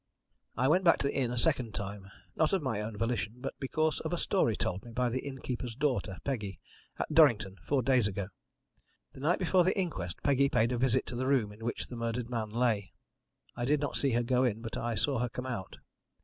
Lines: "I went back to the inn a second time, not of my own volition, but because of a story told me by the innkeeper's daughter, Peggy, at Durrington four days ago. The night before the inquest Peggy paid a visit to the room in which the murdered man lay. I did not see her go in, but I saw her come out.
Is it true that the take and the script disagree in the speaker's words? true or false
false